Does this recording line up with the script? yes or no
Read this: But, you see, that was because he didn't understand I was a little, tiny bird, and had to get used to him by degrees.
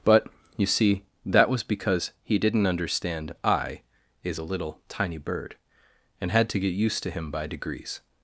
no